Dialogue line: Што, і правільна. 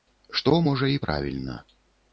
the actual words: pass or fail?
fail